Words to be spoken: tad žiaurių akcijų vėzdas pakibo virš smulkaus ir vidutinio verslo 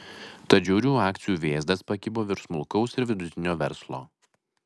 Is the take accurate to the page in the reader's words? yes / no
yes